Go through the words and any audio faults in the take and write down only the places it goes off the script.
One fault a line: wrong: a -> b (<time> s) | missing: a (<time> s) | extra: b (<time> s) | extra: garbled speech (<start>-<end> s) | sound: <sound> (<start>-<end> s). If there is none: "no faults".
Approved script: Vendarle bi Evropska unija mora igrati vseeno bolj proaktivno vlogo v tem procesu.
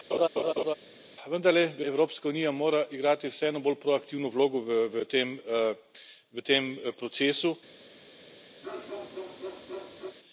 sound: laugh (0.1-0.7 s)
sound: bark (8.6-10.2 s)